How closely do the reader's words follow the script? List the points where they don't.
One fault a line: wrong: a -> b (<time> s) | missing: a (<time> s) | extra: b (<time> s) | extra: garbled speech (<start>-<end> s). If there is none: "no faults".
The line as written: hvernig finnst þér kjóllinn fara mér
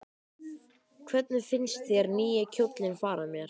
extra: nýi (2.2 s)